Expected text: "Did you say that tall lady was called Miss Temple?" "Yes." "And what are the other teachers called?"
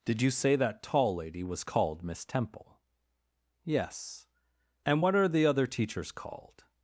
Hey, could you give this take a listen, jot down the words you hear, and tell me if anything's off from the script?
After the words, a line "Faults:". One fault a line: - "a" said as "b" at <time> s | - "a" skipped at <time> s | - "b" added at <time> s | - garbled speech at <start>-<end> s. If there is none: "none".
"Did you say that tall lady was called Miss Temple?" "Yes." "And what are the other teachers called?"
Faults:
none